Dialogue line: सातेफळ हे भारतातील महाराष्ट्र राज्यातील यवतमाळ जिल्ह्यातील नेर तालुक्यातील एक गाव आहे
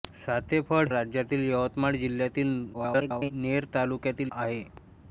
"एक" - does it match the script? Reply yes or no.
no